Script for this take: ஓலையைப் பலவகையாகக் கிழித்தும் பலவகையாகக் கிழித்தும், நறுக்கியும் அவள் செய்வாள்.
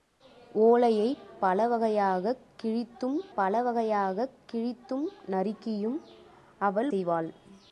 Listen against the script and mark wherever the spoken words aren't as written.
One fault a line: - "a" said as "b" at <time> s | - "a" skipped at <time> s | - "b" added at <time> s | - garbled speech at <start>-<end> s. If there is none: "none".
none